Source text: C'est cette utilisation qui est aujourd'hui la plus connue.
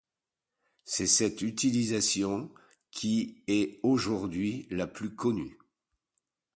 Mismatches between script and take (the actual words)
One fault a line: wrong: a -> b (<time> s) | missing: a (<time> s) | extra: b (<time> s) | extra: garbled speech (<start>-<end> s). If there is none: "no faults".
no faults